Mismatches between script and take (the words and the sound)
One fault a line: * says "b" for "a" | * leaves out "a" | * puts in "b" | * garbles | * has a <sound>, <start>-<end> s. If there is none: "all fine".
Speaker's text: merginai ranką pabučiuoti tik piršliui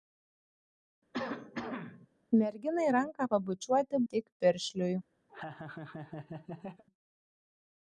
* has a cough, 1.1-2.1 s
* has a laugh, 5.3-6.8 s